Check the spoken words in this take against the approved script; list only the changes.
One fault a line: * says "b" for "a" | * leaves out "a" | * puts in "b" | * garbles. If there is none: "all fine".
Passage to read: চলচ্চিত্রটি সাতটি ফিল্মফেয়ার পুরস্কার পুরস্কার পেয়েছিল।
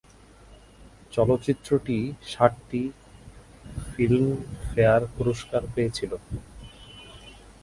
* leaves out "পুরস্কার"